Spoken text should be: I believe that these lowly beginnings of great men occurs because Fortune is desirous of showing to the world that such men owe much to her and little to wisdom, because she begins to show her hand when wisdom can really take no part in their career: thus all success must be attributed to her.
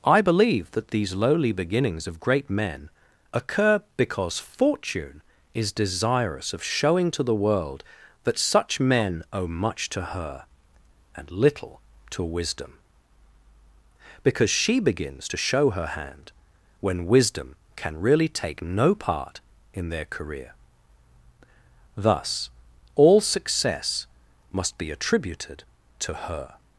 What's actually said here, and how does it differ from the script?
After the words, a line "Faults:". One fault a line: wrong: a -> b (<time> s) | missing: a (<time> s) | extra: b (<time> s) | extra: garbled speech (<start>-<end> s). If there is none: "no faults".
I believe that these lowly beginnings of great men occur because Fortune is desirous of showing to the world that such men owe much to her and little to wisdom, because she begins to show her hand when wisdom can really take no part in their career: thus all success must be attributed to her.
Faults:
wrong: occurs -> occur (3.3 s)